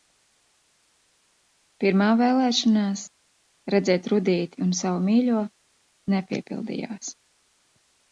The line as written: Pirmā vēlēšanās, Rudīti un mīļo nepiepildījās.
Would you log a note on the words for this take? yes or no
yes